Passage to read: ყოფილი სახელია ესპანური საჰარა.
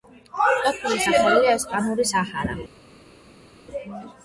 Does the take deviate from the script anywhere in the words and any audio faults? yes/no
no